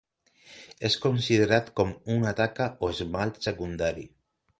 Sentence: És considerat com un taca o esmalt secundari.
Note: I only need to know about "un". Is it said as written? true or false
false